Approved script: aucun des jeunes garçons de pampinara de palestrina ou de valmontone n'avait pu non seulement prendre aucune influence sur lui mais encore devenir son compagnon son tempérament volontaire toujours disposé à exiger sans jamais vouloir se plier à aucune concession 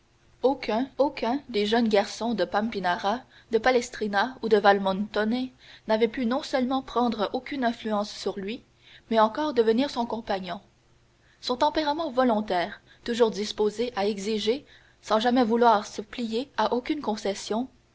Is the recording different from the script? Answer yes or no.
yes